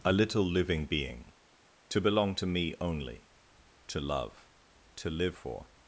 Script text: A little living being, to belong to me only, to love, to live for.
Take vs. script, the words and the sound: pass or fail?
pass